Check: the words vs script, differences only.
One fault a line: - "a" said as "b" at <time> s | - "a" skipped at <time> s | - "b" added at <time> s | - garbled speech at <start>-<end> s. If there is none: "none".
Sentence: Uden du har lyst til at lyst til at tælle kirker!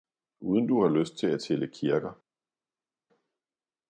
- "lyst til at" skipped at 1.4 s